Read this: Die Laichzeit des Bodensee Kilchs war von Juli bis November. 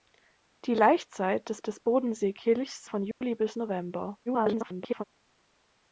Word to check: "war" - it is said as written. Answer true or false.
false